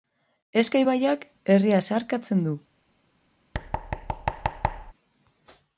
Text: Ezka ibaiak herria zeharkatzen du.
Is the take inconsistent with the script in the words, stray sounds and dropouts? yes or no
yes